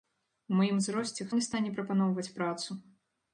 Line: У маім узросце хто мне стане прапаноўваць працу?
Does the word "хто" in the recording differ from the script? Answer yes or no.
yes